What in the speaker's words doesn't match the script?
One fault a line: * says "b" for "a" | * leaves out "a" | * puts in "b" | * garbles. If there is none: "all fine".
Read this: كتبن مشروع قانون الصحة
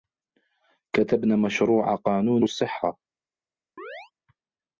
all fine